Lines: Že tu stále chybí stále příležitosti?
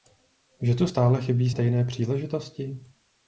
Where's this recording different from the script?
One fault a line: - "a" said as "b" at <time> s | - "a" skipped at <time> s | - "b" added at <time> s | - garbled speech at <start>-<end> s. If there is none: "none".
- "stále" said as "stejné" at 1.5 s